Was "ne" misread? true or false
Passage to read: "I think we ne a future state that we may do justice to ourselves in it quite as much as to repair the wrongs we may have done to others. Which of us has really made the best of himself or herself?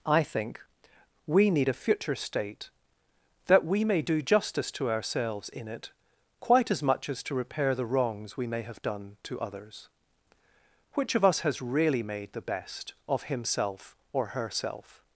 true